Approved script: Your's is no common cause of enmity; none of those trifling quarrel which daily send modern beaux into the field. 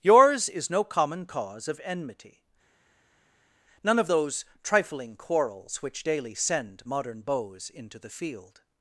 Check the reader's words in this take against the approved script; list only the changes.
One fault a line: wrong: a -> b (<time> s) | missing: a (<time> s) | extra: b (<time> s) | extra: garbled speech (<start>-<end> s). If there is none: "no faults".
wrong: quarrel -> quarrels (5.2 s)